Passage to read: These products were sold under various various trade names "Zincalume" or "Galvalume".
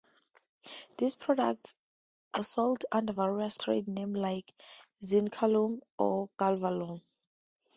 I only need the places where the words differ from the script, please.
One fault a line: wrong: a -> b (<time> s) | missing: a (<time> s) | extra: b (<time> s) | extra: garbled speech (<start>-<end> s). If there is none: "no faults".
wrong: were -> are (2.3 s)
missing: various (3.6 s)
extra: like (4.2 s)